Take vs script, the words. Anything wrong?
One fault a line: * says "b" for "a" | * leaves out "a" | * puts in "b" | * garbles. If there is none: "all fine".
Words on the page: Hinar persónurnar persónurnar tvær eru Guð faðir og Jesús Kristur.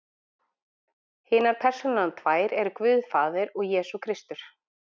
* leaves out "persónurnar"